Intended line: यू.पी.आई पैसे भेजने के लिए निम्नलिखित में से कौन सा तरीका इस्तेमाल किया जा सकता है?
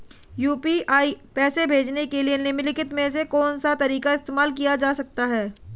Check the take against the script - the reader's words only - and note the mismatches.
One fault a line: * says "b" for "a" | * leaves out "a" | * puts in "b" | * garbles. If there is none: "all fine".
all fine